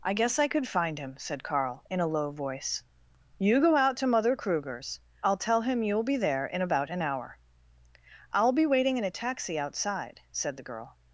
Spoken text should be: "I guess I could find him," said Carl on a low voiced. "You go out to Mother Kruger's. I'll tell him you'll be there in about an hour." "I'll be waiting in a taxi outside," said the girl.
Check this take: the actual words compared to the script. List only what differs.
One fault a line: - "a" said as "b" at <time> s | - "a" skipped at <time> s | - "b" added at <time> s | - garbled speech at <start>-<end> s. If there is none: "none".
- "on" said as "in" at 1.9 s
- "voiced" said as "voice" at 2.3 s